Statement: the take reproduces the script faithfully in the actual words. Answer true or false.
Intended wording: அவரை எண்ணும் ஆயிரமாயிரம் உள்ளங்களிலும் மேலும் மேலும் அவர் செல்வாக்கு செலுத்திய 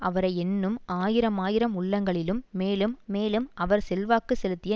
true